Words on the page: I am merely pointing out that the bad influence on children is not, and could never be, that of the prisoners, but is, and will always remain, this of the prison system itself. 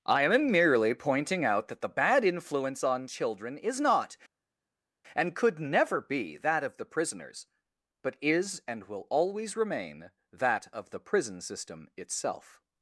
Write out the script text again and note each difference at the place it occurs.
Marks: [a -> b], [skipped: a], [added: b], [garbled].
I am merely pointing out that the bad influence on children is not, and could never be, that of the prisoners, but is, and will always remain, [this -> that] of the prison system itself.